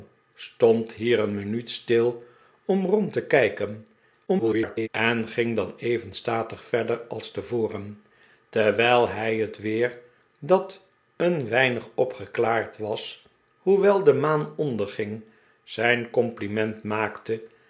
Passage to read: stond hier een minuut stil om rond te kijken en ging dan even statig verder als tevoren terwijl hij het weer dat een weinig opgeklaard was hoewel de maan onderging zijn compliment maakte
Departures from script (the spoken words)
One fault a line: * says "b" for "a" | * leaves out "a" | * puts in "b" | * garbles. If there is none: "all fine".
* garbles